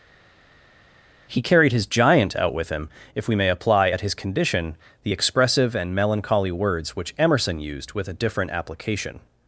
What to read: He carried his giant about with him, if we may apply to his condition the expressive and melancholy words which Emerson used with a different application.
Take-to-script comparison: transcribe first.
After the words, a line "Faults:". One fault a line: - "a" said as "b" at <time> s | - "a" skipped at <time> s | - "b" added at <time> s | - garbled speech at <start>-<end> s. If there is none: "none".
He carried his giant out with him, if we may apply at his condition the expressive and melancholy words which Emerson used with a different application.
Faults:
- "about" said as "out" at 2.3 s
- "to" said as "at" at 3.9 s